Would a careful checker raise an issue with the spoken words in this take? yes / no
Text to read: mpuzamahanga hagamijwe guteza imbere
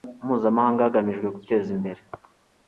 no